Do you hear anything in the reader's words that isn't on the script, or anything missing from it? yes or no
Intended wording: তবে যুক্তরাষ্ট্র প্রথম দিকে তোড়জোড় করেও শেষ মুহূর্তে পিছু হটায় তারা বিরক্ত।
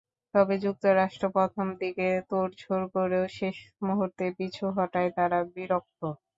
no